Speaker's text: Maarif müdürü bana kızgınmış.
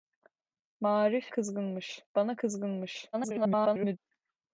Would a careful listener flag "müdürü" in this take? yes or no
yes